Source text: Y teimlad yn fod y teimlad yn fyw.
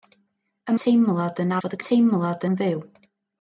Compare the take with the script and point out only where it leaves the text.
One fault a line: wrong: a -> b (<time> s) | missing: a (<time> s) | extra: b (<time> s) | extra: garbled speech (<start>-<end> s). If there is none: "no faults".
no faults